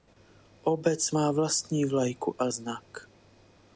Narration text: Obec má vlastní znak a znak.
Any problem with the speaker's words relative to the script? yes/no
yes